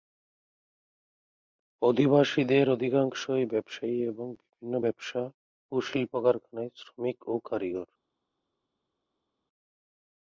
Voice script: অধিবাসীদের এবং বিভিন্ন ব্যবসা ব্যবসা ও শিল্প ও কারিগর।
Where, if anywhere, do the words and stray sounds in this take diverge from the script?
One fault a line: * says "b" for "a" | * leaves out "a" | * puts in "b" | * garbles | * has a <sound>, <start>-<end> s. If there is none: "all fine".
* puts in "অধিকাংশই ব্যবসায়ী"
* leaves out "ব্যবসা"
* puts in "কারখানায় শ্রমিক"